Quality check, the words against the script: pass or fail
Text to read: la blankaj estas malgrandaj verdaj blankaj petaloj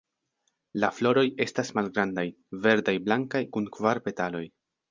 fail